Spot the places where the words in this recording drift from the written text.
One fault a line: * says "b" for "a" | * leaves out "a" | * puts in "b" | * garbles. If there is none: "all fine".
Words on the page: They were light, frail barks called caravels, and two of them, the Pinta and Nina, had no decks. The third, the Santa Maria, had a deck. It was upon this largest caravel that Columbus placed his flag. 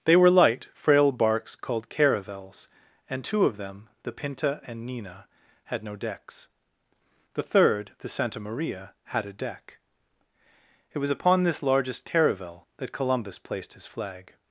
all fine